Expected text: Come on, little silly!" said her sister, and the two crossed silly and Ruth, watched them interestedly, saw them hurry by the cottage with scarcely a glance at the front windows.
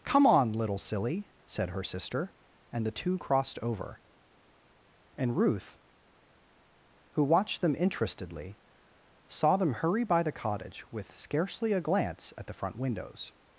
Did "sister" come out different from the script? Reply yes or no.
no